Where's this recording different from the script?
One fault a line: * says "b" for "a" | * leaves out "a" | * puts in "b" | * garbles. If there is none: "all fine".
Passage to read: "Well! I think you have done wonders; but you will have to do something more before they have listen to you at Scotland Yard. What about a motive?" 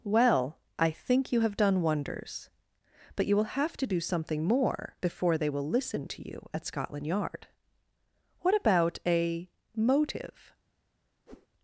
* says "will" for "have"